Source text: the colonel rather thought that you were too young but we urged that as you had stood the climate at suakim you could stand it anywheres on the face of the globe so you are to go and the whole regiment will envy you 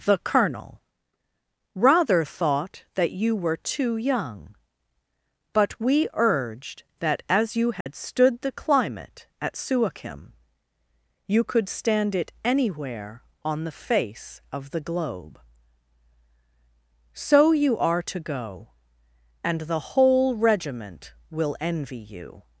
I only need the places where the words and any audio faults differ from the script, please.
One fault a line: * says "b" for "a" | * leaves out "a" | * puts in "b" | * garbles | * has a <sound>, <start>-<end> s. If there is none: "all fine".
* has a dropout, 7.8-7.9 s
* says "anywhere" for "anywheres"